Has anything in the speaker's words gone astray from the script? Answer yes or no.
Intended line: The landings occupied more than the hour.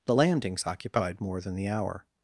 no